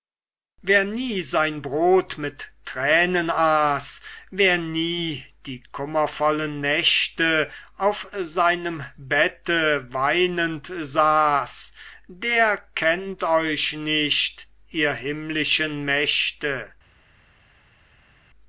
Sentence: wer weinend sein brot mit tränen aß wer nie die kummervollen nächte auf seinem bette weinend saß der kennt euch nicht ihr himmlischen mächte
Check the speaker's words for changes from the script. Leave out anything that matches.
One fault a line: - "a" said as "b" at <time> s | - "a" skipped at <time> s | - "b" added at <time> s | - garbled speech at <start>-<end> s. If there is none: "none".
- "weinend" said as "nie" at 0.8 s